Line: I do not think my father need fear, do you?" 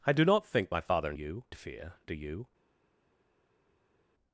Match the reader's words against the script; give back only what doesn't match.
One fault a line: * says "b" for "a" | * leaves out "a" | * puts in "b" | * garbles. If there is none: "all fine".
* says "you" for "need"